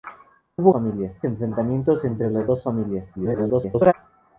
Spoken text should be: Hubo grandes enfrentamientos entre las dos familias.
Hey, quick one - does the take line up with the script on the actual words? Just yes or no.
no